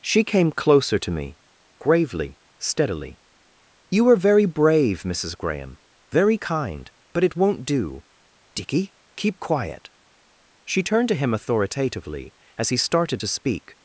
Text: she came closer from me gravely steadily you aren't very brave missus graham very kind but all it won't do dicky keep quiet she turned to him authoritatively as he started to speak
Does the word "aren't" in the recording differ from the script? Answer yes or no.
yes